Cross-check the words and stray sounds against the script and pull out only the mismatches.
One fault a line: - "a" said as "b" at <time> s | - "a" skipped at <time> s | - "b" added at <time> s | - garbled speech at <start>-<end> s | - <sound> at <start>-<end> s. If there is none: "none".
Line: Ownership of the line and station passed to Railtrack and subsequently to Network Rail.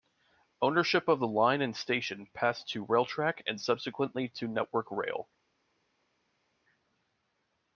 none